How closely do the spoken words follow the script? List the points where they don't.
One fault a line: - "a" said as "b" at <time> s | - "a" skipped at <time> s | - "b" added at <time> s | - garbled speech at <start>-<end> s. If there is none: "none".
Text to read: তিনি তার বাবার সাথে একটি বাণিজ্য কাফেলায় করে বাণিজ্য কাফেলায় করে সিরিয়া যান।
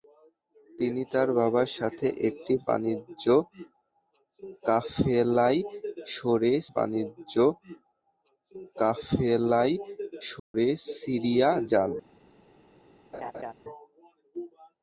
none